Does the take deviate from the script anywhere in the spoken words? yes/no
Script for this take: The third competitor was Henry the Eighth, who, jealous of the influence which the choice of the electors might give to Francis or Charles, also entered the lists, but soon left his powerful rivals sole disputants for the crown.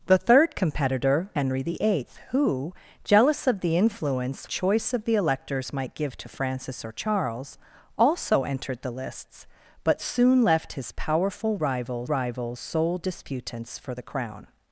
yes